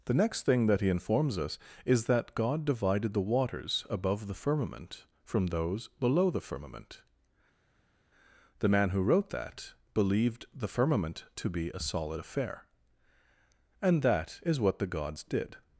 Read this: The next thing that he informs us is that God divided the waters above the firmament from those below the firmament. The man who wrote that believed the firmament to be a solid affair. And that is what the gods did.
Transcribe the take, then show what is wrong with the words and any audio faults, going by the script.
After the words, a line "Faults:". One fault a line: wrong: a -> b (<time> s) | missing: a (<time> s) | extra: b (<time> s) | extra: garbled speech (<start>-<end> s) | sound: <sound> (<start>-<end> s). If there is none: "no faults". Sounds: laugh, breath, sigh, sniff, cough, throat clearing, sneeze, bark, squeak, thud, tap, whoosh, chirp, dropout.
The next thing that he informs us is that God divided the waters above the firmament from those below the firmament. The man who wrote that believed the firmament to be a solid affair. And that is what the gods did.
Faults:
no faults